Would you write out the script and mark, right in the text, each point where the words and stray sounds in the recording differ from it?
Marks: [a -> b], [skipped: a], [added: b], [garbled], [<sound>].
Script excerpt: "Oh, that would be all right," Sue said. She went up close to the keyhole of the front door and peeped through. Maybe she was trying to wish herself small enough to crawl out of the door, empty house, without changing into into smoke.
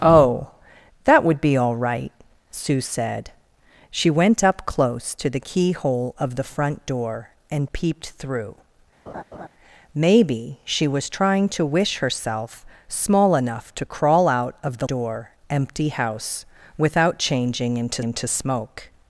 "Oh, that would be all right," Sue said. She went up close to the keyhole of the front door and peeped through. [laugh] Maybe she was trying to wish herself small enough to crawl out of the door, empty house, without changing into into smoke.